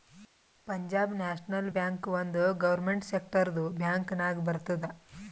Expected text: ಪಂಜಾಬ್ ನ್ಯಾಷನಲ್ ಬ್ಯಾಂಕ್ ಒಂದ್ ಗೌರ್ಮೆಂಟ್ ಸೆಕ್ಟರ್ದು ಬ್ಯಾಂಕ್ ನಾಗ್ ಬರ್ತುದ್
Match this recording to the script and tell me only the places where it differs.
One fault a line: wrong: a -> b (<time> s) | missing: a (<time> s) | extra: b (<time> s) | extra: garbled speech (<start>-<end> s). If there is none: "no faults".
no faults